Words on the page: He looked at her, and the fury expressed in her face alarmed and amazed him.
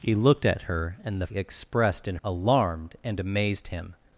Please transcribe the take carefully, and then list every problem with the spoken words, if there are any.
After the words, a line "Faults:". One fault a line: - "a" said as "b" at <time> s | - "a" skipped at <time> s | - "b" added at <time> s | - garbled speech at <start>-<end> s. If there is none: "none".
He looked at her, and the expressed in alarmed and amazed him.
Faults:
- "fury" skipped at 1.3 s
- "her face" skipped at 2.2 s